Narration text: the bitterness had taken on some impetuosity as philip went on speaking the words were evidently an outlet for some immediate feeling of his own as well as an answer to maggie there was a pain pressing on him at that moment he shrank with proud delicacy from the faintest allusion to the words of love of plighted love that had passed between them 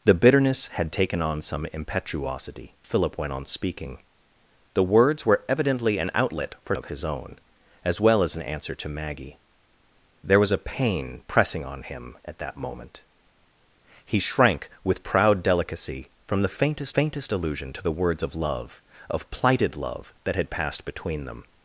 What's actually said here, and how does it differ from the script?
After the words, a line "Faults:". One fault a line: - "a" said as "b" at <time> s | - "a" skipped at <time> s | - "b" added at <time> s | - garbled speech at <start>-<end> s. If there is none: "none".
the bitterness had taken on some impetuosity philip went on speaking the words were evidently an outlet for of his own as well as an answer to maggie there was a pain pressing on him at that moment he shrank with proud delicacy from the faintest faintest allusion to the words of love of plighted love that had passed between them
Faults:
- "as" skipped at 2.7 s
- "some immediate feeling" skipped at 6.7 s
- "faintest" added at 16.9 s